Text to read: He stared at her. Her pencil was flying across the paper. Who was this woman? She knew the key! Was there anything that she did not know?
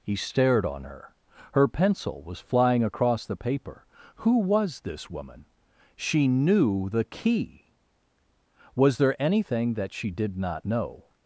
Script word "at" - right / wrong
wrong